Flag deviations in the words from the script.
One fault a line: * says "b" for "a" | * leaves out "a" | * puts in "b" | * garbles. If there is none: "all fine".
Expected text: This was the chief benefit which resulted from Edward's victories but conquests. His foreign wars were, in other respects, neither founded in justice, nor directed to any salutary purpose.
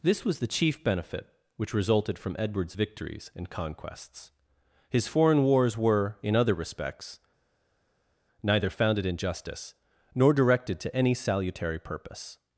* says "and" for "but"